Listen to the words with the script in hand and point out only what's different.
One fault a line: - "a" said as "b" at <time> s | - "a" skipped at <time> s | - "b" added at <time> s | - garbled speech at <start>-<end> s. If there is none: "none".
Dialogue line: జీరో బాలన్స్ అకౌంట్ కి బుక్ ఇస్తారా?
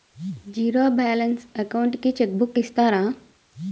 - "చెక్" added at 2.2 s